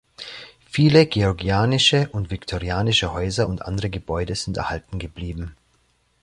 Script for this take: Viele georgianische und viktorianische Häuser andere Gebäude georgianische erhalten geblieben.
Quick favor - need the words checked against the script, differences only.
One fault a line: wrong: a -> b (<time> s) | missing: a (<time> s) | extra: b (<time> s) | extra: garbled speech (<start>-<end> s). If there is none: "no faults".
extra: und (3.5 s)
wrong: georgianische -> sind (4.3 s)